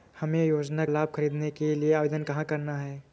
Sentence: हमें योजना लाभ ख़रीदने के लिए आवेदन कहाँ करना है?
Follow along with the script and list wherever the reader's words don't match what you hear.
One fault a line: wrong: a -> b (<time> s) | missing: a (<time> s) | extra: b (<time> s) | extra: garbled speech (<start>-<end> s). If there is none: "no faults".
no faults